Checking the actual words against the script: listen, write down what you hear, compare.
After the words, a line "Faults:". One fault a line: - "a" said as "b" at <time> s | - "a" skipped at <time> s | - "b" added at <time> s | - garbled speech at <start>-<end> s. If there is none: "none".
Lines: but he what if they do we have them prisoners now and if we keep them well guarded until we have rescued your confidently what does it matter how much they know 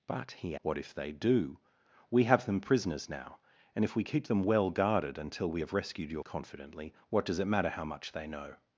but he what if they do we have them prisoners now and if we keep them well guarded until we have rescued your confidently what does it matter how much they know
Faults:
none